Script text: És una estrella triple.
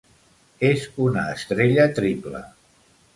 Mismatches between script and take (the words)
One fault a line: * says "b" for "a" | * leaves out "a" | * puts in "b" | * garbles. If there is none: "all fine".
all fine